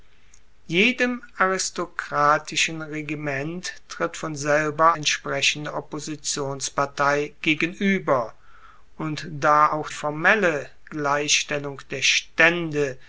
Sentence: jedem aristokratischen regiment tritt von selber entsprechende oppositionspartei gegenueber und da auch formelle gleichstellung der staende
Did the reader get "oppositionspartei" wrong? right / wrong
right